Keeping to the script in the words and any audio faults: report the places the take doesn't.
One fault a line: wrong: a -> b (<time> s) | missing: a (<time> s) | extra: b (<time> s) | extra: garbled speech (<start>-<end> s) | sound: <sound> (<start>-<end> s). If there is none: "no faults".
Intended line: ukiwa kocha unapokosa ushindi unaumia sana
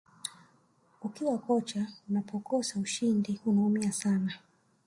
no faults